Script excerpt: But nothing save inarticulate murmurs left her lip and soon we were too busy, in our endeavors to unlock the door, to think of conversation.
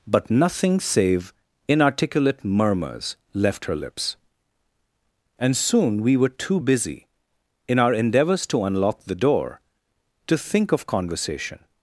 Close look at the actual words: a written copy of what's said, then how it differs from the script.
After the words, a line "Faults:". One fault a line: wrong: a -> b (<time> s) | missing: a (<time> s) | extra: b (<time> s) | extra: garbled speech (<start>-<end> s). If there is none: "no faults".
But nothing save inarticulate murmurs left her lips and soon we were too busy, in our endeavors to unlock the door, to think of conversation.
Faults:
wrong: lip -> lips (3.8 s)